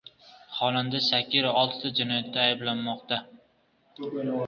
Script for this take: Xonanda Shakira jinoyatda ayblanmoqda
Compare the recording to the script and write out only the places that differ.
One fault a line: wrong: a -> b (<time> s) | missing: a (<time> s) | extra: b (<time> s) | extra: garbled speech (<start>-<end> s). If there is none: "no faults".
extra: oltita (1.6 s)